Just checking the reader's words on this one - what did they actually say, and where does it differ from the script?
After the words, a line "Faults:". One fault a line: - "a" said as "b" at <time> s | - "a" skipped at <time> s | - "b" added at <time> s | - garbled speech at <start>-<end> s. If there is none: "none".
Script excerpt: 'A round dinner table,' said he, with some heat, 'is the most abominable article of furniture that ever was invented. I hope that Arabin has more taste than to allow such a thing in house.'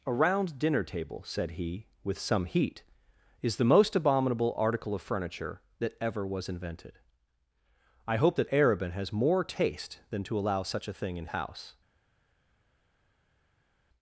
'A round dinner table,' said he, with some heat, 'is the most abominable article of furniture that ever was invented. I hope that Arabin has more taste than to allow such a thing in house.'
Faults:
none